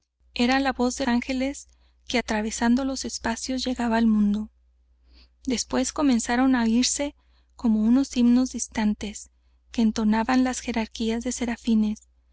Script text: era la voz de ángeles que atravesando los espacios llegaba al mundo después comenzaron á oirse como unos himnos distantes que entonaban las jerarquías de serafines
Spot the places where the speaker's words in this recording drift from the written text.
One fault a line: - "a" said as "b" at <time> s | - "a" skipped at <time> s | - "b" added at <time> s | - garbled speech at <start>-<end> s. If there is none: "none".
none